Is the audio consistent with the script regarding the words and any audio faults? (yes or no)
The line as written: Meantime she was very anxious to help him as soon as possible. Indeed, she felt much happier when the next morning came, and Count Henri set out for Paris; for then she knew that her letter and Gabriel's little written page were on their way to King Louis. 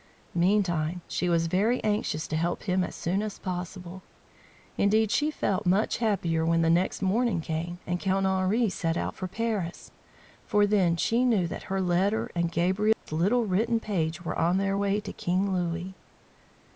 no